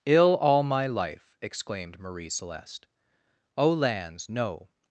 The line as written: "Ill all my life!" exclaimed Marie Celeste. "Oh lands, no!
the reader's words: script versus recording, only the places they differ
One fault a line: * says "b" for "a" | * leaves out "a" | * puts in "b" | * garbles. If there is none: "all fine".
all fine